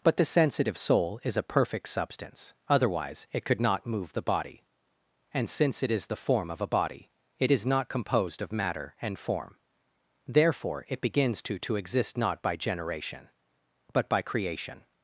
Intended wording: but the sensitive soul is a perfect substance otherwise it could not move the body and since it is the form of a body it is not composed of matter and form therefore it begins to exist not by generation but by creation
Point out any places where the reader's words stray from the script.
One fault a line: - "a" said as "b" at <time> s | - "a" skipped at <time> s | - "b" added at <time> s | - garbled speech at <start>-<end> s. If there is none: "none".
- "to" added at 11.6 s